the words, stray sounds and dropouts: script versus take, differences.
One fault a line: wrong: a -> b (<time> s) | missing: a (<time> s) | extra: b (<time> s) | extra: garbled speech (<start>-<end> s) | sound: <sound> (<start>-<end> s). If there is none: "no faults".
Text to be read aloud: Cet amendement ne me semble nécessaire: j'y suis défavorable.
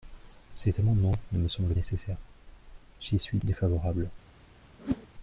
sound: whoosh (4.8-5.1 s)